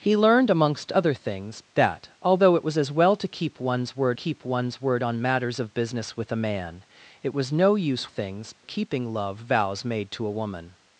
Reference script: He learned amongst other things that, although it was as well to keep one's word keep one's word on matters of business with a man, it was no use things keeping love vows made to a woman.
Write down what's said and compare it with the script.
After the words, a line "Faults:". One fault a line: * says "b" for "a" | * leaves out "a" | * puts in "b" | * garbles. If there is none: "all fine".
He learned amongst other things that, although it was as well to keep one's word keep one's word on matters of business with a man, it was no use things keeping love vows made to a woman.
Faults:
all fine